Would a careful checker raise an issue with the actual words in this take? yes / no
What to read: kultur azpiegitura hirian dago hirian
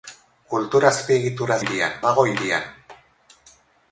no